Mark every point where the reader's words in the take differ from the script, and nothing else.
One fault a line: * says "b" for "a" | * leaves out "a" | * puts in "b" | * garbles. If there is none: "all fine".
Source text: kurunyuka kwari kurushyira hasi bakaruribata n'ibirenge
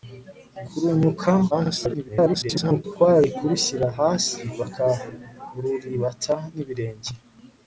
* garbles